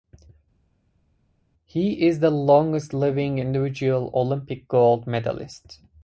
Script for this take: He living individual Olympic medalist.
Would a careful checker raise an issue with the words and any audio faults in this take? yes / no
yes